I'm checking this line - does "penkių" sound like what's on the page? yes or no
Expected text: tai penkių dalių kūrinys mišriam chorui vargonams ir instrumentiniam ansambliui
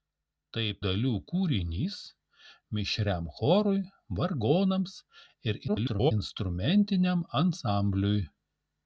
no